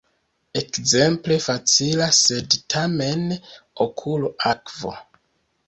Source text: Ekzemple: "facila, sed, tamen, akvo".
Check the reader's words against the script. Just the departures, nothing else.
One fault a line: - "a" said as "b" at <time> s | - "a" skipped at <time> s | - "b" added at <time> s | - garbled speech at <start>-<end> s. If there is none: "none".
- "okulo" added at 3.9 s